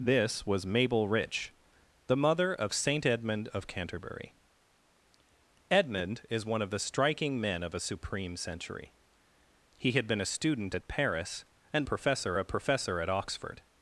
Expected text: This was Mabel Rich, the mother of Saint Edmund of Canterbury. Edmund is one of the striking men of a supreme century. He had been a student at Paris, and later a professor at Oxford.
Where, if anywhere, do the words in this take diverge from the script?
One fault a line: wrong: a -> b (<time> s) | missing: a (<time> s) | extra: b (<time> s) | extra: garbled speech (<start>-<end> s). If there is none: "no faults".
wrong: later -> professor (11.8 s)